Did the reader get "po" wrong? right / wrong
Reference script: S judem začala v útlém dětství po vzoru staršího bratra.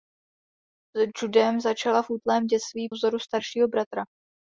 wrong